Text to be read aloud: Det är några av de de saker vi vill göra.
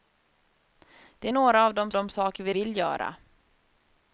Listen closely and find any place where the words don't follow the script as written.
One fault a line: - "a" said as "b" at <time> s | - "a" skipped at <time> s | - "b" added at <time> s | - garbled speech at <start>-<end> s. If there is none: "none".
none